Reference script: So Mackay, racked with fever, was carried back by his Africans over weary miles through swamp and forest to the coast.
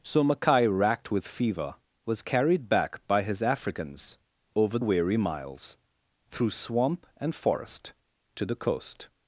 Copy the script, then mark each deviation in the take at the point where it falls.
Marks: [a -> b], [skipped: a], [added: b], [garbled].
So Mackay, racked with fever, was carried back by his Africans over weary miles through swamp and forest to the coast.